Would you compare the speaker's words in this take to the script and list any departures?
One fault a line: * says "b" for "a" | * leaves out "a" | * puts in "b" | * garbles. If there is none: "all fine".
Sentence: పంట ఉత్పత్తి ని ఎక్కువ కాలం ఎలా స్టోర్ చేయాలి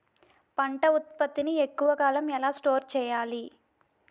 all fine